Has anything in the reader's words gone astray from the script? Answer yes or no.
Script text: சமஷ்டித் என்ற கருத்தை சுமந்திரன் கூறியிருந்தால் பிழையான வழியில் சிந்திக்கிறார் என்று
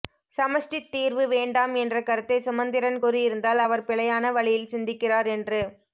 yes